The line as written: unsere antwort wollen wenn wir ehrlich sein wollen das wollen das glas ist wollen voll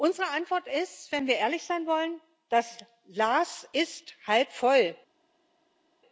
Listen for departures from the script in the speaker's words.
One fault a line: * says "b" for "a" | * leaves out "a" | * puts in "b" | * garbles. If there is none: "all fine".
* says "ist" for "wollen"
* leaves out "wollen das"
* says "halb" for "wollen"